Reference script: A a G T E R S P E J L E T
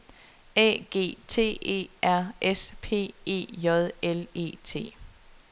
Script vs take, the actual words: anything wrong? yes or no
yes